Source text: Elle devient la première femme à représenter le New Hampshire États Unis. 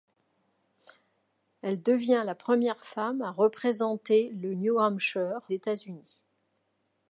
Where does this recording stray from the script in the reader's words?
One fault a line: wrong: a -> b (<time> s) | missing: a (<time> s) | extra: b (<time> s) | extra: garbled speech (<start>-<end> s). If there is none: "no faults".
no faults